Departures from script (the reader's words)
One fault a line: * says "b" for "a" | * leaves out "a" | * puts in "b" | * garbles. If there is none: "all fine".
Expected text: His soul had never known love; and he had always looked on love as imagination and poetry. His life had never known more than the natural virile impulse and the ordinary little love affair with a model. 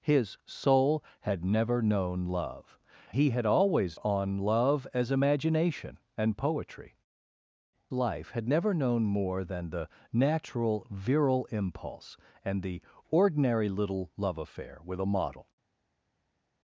* leaves out "and"
* leaves out "looked"
* leaves out "His"